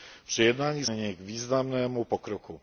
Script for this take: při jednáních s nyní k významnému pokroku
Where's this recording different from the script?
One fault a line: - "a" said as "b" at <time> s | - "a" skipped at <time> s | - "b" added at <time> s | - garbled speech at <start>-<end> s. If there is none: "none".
none